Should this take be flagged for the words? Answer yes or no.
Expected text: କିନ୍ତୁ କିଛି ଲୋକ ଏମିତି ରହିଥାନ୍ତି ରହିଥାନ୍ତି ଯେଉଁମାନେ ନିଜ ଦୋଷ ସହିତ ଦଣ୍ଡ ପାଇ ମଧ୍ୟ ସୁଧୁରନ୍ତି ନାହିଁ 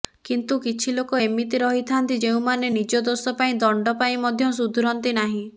yes